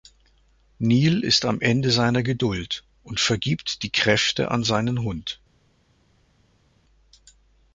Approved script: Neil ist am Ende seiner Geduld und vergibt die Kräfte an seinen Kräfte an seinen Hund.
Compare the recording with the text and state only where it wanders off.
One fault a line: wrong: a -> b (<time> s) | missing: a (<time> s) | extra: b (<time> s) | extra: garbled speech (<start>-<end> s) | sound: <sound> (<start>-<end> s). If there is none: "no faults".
missing: Kräfte an seinen (5.0 s)